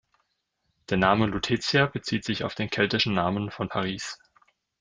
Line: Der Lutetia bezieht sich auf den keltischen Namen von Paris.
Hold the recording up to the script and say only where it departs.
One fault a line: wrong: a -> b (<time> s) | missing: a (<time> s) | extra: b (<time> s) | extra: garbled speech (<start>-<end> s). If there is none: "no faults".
extra: Name (1.0 s)